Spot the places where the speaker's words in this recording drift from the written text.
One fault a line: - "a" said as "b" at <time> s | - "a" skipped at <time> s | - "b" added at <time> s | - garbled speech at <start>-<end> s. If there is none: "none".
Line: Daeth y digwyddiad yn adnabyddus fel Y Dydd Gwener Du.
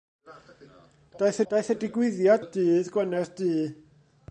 - "daeth" added at 1.5 s
- "yn adnabyddus fel" skipped at 2.4 s